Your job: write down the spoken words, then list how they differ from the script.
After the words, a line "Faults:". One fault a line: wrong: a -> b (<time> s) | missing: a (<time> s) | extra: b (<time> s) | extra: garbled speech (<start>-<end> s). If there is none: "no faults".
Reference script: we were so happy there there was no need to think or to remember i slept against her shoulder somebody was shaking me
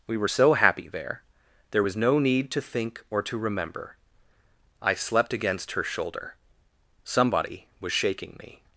we were so happy there there was no need to think or to remember i slept against her shoulder somebody was shaking me
Faults:
no faults